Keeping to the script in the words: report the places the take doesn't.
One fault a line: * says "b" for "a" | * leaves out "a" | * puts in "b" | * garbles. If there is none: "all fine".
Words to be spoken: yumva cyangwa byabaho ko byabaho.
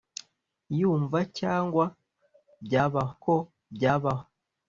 all fine